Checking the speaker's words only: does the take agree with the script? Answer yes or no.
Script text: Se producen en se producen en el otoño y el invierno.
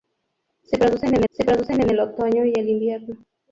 yes